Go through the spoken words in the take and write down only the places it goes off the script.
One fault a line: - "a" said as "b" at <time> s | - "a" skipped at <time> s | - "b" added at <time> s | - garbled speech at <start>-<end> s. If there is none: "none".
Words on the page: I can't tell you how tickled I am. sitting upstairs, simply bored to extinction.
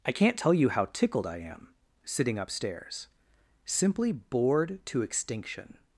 none